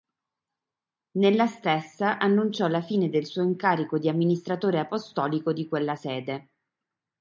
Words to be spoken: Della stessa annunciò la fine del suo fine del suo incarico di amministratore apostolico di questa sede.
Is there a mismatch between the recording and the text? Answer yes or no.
yes